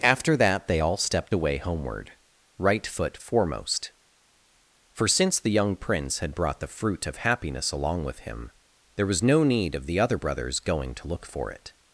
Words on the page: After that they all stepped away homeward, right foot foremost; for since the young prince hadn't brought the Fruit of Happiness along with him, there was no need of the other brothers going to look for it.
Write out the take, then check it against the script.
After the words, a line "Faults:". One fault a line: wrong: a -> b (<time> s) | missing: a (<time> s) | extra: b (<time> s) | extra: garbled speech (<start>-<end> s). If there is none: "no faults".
After that they all stepped away homeward, right foot foremost; for since the young prince had brought the Fruit of Happiness along with him, there was no need of the other brothers going to look for it.
Faults:
wrong: hadn't -> had (6.2 s)